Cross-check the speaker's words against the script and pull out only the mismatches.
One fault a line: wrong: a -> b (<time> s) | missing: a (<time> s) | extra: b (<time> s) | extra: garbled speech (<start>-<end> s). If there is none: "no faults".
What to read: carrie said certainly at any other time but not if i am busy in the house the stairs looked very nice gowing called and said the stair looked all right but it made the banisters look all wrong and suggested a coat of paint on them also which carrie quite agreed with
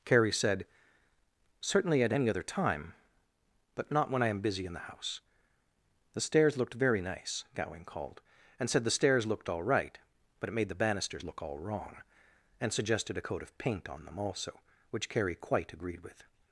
wrong: if -> when (4.1 s)
wrong: stair -> stairs (8.9 s)